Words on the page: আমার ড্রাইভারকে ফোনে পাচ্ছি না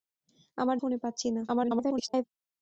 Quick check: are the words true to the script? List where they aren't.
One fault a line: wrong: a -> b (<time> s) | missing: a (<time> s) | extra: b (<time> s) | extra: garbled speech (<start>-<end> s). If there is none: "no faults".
missing: ড্রাইভারকে (0.8 s)
extra: garbled speech (1.5-2.2 s)